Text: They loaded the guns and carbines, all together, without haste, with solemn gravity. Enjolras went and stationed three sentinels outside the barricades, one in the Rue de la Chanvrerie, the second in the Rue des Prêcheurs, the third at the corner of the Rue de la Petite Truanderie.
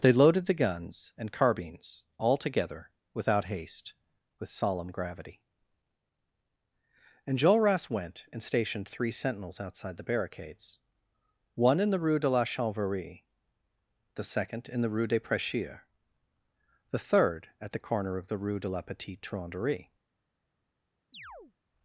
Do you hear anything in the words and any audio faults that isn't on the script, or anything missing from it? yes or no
yes